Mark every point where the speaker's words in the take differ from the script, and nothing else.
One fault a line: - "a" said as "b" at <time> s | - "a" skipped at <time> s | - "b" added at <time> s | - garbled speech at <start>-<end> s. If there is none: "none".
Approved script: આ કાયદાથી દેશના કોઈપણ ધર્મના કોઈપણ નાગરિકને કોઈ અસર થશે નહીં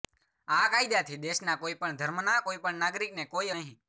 - "અસર થશે" skipped at 3.5 s